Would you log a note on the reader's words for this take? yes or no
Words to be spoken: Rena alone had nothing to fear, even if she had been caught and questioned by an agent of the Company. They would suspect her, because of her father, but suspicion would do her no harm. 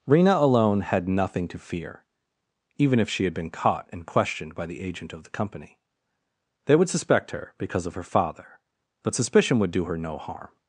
yes